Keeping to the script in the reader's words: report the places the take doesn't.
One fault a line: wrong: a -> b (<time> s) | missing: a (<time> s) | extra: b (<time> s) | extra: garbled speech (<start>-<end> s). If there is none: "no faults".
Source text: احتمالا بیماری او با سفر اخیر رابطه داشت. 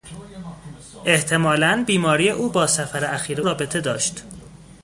no faults